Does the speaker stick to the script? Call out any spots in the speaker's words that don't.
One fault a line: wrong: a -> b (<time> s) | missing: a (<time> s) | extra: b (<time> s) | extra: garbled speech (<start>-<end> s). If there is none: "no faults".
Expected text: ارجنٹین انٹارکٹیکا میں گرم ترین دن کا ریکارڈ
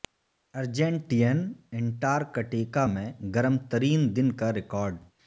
no faults